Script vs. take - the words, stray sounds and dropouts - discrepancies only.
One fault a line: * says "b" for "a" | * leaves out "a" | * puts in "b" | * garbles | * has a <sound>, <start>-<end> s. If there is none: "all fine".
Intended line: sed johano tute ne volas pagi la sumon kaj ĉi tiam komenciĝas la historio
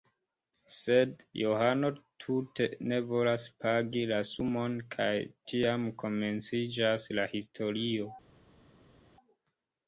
* leaves out "ĉi"